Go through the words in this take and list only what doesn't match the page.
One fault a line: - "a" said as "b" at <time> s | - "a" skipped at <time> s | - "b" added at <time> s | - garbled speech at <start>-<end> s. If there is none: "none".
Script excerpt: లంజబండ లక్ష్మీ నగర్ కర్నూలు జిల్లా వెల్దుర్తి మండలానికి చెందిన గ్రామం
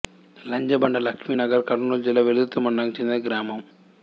none